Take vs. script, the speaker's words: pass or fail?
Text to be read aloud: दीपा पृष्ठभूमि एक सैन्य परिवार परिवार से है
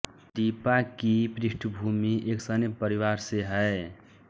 fail